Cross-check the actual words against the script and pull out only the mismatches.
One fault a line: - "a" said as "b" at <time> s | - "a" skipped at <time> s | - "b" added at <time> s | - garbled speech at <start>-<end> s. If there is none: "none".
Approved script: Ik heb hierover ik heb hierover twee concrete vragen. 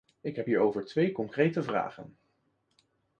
- "ik heb hierover" skipped at 0.8 s